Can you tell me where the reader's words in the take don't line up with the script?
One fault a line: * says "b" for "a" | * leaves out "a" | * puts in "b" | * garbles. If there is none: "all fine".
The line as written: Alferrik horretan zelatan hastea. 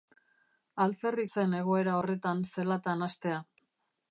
* puts in "zen egoera"